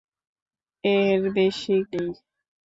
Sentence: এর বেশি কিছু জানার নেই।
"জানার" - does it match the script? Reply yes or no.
no